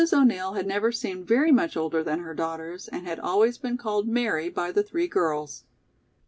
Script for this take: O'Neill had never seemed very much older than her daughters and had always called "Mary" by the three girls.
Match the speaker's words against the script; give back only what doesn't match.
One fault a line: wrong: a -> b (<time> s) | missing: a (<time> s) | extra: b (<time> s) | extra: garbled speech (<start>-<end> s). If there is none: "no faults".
extra: been (3.6 s)